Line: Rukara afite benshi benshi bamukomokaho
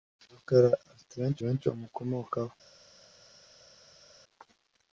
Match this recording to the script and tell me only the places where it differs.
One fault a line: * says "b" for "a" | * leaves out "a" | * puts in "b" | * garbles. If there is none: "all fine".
all fine